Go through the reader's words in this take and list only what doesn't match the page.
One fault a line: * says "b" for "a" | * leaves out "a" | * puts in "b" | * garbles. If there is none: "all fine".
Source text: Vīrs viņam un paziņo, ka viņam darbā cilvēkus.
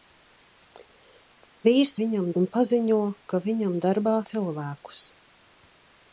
all fine